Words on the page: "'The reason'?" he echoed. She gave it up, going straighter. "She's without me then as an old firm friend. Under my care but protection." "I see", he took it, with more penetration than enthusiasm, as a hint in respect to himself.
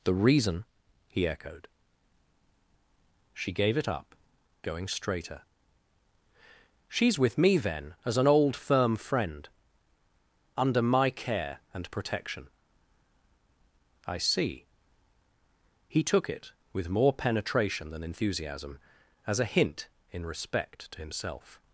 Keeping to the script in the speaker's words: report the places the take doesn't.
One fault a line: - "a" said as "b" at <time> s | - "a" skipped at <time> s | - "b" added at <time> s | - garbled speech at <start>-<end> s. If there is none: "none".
- "without" said as "with" at 7.2 s
- "but" said as "and" at 11.7 s